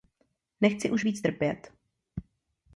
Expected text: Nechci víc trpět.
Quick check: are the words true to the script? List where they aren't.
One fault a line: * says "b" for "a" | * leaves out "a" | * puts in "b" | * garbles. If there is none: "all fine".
* puts in "už"